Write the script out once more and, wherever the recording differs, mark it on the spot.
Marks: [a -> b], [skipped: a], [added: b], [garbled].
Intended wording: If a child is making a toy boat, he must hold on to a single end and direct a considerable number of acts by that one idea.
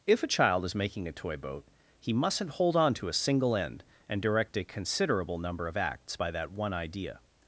If a child is making a toy boat, he [must -> mustn't] hold on to a single end and direct a considerable number of acts by that one idea.